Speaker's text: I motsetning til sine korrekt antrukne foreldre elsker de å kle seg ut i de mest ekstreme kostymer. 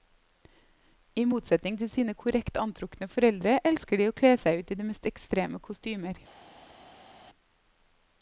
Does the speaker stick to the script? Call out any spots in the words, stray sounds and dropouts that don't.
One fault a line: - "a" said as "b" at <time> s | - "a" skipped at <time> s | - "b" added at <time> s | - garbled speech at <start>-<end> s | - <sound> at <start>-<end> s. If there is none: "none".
none